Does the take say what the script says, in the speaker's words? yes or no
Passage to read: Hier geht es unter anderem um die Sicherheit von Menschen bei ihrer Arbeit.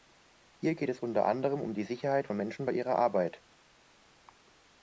yes